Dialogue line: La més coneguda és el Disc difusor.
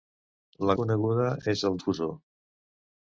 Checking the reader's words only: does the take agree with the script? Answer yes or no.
no